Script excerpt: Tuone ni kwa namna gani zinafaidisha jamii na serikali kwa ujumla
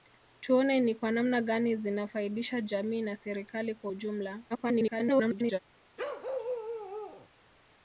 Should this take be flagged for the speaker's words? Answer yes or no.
yes